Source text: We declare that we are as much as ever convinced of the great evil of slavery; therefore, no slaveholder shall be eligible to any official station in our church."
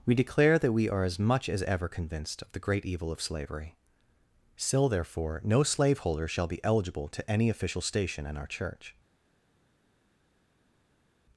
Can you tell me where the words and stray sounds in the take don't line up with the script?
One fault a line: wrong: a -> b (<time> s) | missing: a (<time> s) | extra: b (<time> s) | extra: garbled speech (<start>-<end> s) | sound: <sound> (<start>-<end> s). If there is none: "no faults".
extra: still (4.6 s)